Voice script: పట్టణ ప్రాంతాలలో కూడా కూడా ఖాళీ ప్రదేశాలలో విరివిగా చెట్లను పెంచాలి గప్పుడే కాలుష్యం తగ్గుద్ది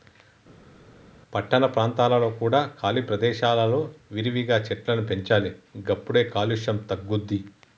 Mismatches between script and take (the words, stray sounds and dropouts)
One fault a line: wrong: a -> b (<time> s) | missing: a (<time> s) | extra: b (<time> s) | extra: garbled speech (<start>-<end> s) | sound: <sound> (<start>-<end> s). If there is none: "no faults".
missing: కూడా (2.6 s)